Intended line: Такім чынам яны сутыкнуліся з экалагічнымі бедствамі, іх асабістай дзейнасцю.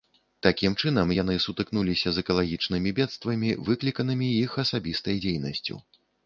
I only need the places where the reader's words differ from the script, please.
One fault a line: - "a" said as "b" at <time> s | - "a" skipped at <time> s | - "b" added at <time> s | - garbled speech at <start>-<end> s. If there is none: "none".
- "выкліканымі" added at 3.7 s